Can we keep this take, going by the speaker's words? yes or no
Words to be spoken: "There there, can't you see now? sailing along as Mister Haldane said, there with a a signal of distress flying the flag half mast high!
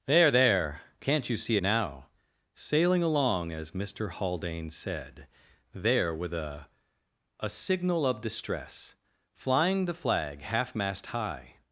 yes